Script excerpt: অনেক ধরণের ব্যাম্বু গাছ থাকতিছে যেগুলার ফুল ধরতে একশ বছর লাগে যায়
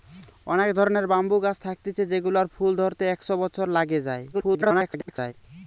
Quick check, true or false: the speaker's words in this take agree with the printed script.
false